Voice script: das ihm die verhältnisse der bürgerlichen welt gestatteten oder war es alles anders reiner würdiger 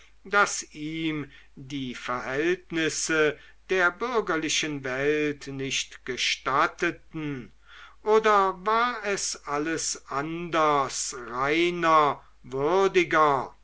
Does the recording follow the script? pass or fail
fail